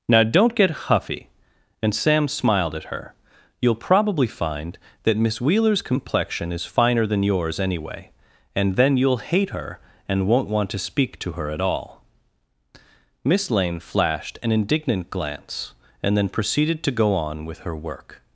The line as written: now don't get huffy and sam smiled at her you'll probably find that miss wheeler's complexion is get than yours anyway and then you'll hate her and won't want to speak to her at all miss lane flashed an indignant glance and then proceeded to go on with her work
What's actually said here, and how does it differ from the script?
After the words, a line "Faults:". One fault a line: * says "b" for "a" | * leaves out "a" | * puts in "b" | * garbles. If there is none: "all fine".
now don't get huffy and sam smiled at her you'll probably find that miss wheeler's complexion is finer than yours anyway and then you'll hate her and won't want to speak to her at all miss lane flashed an indignant glance and then proceeded to go on with her work
Faults:
* says "finer" for "get"